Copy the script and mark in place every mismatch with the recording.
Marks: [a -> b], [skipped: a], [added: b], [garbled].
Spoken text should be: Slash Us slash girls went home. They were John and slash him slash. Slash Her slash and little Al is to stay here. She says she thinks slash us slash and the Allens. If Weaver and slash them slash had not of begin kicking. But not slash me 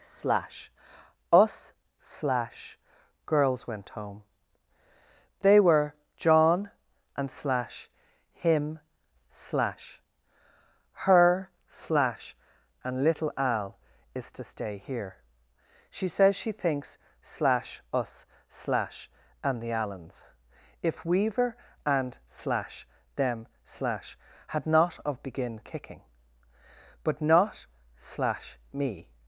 Slash Us slash girls went home. They were John and slash him slash. [skipped: Slash] Her slash and little Al is to stay here. She says she thinks slash us slash and the Allens. If Weaver and slash them slash had not of begin kicking. But not slash me